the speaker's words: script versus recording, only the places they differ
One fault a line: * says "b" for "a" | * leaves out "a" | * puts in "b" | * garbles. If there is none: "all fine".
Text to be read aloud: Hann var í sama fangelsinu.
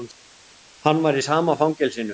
all fine